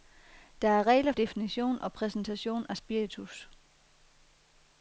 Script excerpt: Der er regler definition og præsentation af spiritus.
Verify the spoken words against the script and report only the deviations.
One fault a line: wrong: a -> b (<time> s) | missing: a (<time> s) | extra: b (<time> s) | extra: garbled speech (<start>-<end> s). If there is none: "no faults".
no faults